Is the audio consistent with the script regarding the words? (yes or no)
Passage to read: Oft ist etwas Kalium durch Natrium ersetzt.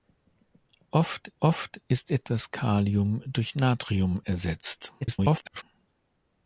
no